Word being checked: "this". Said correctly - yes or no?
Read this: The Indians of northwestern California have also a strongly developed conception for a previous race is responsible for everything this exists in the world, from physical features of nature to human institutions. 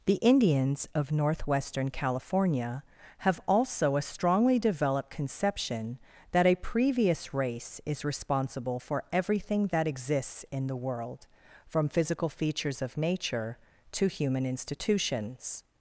no